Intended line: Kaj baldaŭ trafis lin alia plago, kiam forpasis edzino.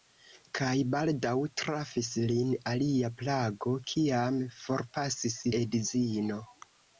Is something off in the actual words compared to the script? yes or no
no